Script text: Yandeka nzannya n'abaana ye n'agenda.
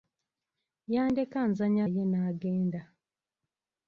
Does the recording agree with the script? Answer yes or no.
no